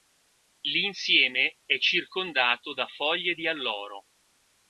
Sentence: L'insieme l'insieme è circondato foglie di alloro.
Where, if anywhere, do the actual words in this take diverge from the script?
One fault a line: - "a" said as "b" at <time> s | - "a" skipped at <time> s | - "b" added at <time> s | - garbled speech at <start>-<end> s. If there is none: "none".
- "l'insieme" skipped at 1.6 s
- "da" added at 2.7 s